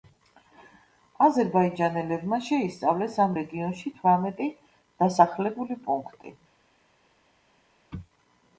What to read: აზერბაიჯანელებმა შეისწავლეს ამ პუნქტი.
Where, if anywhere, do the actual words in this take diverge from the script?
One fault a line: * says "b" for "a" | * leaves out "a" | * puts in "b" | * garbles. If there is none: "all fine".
* puts in "რეგიონში თვრამეტი დასახლებული"